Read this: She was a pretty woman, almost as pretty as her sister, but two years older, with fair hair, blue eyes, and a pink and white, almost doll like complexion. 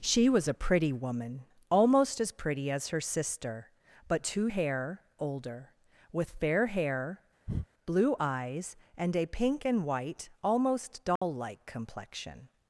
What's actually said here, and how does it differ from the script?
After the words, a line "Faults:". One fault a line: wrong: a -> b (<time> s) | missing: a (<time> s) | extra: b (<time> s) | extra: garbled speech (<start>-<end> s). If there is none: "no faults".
She was a pretty woman, almost as pretty as her sister, but two hair older, with fair hair, blue eyes, and a pink and white, almost doll like complexion.
Faults:
wrong: years -> hair (4.5 s)